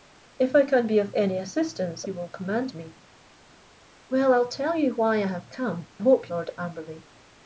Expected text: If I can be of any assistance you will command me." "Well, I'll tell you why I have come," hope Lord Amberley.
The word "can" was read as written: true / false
true